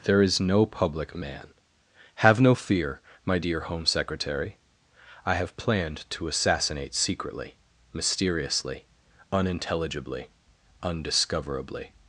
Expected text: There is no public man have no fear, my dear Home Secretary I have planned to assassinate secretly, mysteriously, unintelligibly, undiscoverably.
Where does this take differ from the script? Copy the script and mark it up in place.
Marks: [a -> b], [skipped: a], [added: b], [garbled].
There is no public man have no fear, my dear Home Secretary I have planned to assassinate secretly, mysteriously, unintelligibly, undiscoverably.